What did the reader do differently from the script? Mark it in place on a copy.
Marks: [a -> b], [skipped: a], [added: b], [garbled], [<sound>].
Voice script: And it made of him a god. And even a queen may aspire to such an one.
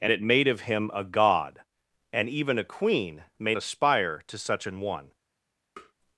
And it made of him a god. And even a queen may aspire to such an one. [tap]